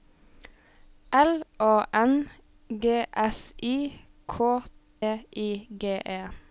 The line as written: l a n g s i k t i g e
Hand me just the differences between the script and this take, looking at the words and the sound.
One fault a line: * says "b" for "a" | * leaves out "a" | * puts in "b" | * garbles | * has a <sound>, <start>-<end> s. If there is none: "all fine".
* leaves out "t"